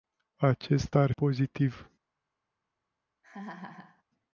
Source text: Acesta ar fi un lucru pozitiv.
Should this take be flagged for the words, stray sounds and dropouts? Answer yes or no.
yes